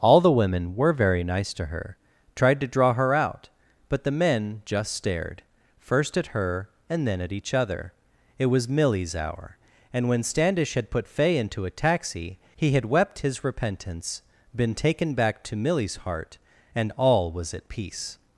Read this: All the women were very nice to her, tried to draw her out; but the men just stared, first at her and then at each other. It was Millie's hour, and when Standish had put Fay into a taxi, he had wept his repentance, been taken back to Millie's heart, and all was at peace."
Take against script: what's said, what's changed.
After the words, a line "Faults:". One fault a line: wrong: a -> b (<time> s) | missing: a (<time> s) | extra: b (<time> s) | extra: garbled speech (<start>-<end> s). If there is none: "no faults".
All the women were very nice to her, tried to draw her out; but the men just stared, first at her and then at each other. It was Millie's hour, and when Standish had put Fay into a taxi, he had wept his repentance, been taken back to Millie's heart, and all was at peace."
Faults:
no faults